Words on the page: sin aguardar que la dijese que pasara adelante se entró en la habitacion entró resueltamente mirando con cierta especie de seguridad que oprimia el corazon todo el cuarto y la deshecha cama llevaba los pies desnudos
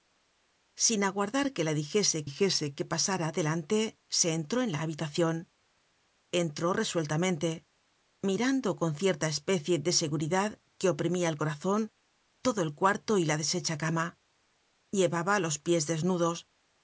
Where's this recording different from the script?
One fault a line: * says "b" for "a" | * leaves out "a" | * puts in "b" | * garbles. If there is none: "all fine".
* puts in "dijese"